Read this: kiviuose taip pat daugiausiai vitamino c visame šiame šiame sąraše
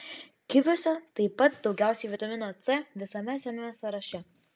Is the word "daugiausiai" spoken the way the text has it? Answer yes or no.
yes